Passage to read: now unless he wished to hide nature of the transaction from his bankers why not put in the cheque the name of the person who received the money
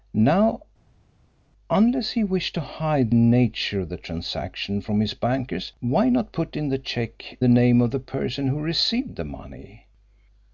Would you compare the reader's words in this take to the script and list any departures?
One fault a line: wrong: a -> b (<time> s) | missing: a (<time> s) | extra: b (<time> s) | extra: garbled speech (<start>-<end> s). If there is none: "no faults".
no faults